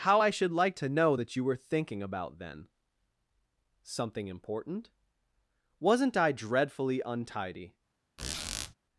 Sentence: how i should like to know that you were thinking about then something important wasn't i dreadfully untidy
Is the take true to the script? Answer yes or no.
yes